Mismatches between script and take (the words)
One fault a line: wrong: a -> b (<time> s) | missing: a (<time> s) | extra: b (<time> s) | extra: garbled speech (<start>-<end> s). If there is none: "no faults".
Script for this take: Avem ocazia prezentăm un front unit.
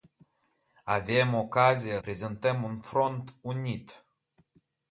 no faults